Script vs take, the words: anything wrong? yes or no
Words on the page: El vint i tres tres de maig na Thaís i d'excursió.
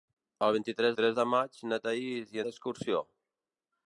no